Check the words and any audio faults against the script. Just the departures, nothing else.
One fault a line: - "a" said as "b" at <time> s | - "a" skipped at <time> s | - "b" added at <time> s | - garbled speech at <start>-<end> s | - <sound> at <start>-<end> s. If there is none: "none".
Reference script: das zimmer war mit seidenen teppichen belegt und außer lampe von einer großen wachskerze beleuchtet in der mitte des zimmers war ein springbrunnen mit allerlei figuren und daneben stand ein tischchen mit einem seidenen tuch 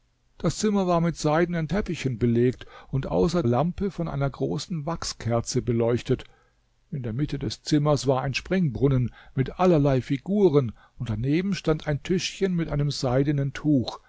none